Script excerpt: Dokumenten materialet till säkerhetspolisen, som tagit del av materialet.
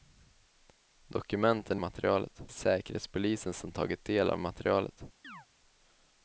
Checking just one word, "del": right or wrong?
right